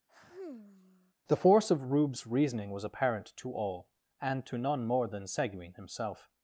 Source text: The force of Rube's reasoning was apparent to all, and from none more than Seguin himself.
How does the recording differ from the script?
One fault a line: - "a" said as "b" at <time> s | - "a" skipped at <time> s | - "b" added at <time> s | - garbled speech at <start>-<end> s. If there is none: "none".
- "from" said as "to" at 4.4 s